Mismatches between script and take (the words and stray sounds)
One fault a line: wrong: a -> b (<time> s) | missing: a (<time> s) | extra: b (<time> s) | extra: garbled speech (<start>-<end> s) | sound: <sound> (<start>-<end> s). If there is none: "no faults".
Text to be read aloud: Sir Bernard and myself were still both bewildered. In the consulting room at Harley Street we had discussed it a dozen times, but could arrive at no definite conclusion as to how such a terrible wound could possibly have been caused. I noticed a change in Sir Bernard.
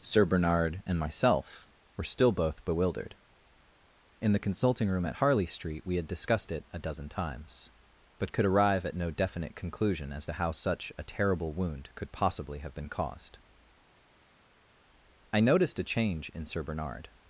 no faults